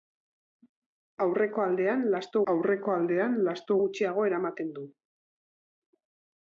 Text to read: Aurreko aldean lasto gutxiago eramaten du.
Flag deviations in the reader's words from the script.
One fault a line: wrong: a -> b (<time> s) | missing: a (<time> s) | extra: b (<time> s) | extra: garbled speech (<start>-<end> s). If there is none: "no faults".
extra: aurreko aldean lasto (2.5 s)